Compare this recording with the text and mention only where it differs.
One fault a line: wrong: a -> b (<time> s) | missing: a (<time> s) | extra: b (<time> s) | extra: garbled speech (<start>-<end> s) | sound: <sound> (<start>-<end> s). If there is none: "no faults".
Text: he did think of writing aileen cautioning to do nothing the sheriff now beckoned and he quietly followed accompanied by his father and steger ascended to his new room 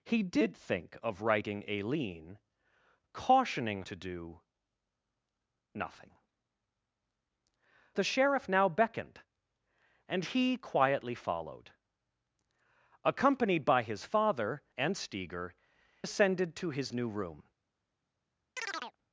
sound: chirp (18.6-19.0 s)